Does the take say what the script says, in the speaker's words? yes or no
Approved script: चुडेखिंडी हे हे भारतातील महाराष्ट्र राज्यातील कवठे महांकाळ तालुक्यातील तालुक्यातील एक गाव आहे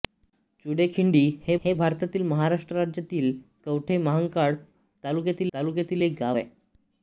yes